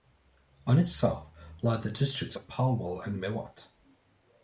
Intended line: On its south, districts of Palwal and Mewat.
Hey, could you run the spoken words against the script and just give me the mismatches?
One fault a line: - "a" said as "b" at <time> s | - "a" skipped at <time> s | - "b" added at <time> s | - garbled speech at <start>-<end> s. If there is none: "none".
- "lie the" added at 1.6 s